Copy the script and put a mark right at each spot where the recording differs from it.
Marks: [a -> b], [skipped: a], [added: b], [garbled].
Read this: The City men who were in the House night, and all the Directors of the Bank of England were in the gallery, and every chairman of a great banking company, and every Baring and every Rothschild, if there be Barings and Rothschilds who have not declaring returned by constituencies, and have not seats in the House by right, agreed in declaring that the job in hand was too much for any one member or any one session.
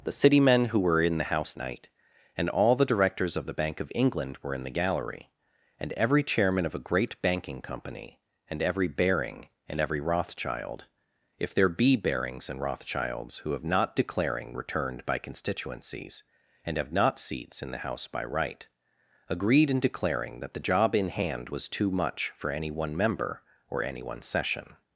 The City men who were in the House night, and all the Directors of the Bank of England were in the gallery, and every chairman of a great banking company, and every Baring and every Rothschild, if there be Barings and Rothschilds who have not declaring returned by constituencies, and have not seats in the House by right, agreed in declaring that the job in hand was too much for any one member or any one session.